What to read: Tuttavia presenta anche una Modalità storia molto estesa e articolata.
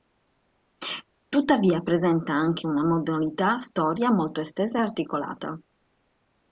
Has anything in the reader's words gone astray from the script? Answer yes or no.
no